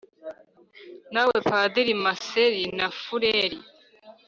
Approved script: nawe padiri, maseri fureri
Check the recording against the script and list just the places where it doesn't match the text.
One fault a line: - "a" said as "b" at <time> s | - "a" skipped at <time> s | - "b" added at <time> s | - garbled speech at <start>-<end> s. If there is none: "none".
- "na" added at 2.8 s